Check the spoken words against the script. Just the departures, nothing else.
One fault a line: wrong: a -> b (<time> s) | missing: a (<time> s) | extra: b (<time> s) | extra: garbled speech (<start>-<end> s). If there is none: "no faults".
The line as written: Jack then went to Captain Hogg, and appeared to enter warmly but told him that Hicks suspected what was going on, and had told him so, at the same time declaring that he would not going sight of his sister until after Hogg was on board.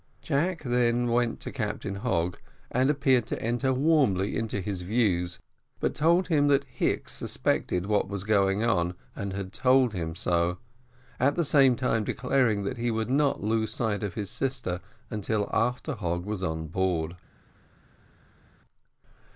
extra: into his views (4.3 s)
wrong: going -> lose (13.4 s)